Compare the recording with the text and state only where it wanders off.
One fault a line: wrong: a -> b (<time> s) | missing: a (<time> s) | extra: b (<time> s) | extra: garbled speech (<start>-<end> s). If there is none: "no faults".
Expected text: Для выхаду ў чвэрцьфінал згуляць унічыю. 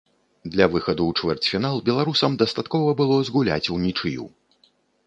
extra: беларусам дастаткова было (1.9 s)